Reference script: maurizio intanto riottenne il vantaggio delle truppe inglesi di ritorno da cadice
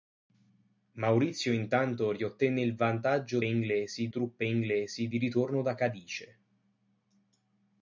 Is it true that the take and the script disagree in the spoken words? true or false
true